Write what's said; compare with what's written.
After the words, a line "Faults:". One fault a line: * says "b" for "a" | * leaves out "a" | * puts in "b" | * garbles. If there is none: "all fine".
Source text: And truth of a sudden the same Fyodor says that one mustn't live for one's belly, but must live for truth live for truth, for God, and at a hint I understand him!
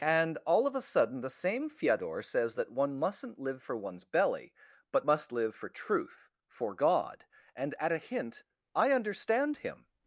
And all of a sudden the same Fyodor says that one mustn't live for one's belly, but must live for truth, for God, and at a hint I understand him!
Faults:
* says "all" for "truth"
* leaves out "live for truth"